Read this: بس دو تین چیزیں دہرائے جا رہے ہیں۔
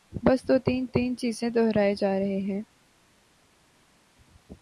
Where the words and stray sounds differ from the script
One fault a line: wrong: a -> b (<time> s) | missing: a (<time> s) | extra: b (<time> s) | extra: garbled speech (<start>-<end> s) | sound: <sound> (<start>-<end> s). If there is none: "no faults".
extra: تین (0.8 s)